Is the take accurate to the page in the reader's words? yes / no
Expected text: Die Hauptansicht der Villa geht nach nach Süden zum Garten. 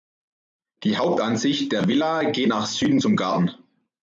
no